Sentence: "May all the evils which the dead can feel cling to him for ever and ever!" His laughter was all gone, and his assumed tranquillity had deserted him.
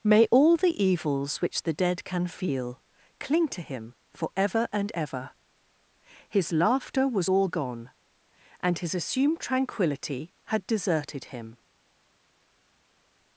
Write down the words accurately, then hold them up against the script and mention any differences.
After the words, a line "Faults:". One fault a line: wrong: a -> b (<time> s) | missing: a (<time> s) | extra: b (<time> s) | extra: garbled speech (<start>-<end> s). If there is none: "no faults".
"May all the evils which the dead can feel cling to him for ever and ever!" His laughter was all gone, and his assumed tranquillity had deserted him.
Faults:
no faults